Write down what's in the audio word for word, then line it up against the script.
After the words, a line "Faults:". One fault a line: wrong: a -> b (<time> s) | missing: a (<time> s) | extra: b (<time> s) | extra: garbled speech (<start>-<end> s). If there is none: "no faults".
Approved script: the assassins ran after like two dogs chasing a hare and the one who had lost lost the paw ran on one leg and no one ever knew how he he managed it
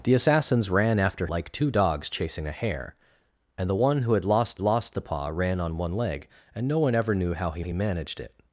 the assassins ran after like two dogs chasing a hare and the one who had lost lost the paw ran on one leg and no one ever knew how he he managed it
Faults:
no faults